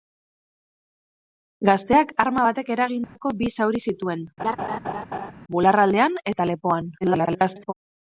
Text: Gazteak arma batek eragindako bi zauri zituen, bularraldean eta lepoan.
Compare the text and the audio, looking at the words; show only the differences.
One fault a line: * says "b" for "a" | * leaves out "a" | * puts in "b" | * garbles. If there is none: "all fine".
* garbles